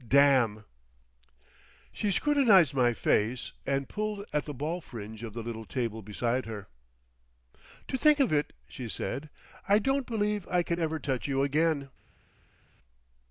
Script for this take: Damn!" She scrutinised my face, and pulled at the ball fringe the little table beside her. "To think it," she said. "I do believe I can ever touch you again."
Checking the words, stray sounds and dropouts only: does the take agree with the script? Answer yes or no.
no